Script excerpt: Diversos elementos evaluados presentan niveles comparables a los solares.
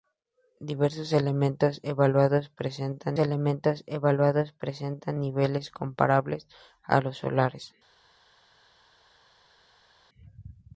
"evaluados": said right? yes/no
yes